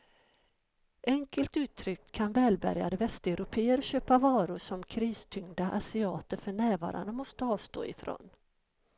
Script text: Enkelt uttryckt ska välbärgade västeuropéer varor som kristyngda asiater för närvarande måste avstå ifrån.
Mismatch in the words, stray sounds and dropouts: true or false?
true